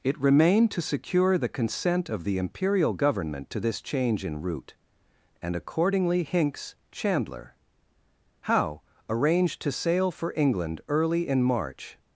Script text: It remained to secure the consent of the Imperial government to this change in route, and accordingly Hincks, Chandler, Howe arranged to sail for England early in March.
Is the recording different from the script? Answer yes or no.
no